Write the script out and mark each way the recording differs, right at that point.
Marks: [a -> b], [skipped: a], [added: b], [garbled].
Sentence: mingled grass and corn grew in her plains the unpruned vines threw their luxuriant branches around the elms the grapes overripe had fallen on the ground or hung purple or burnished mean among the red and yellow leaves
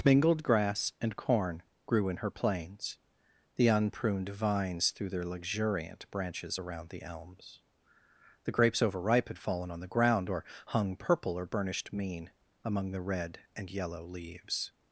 mingled grass and corn grew in her plains the unpruned vines threw their luxuriant branches around the elms the grapes overripe had fallen on the ground or hung purple or burnished mean among the red and yellow leaves